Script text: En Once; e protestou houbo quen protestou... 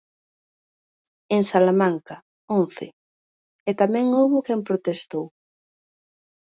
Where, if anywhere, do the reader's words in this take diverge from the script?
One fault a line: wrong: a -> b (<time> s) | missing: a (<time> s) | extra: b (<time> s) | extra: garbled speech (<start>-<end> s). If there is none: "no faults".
extra: Salamanca (1.5 s)
wrong: protestou -> tamén (3.8 s)